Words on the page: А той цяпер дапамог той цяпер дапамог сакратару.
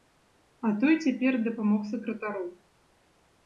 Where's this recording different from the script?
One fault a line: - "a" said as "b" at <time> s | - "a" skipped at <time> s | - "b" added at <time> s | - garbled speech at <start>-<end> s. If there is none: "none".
- "той цяпер дапамог" skipped at 1.9 s